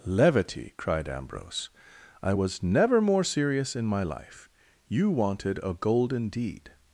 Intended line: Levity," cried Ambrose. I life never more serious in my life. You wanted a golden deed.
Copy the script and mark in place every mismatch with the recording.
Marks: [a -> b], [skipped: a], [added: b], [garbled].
Levity," cried Ambrose. I [life -> was] never more serious in my life. You wanted a golden deed.